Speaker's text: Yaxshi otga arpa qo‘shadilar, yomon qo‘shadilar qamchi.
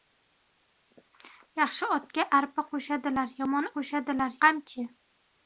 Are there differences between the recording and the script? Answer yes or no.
no